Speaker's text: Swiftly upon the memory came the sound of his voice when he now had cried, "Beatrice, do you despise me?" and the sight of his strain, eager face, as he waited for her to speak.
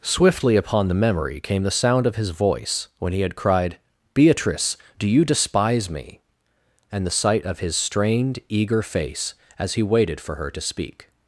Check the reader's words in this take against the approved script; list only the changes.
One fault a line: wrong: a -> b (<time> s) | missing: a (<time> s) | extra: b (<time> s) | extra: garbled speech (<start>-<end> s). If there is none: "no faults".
missing: now (3.2 s)
wrong: strain -> strained (7.8 s)